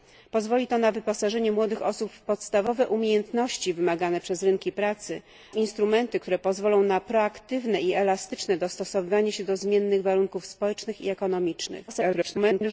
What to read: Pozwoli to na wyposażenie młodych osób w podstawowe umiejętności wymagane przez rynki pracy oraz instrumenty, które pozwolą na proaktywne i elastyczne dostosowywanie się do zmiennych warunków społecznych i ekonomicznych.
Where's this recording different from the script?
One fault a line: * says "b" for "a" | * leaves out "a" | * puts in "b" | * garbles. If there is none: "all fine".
* leaves out "oraz"
* garbles